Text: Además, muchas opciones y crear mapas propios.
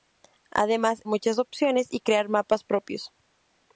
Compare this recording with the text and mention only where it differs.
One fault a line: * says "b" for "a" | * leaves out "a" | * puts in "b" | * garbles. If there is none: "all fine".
all fine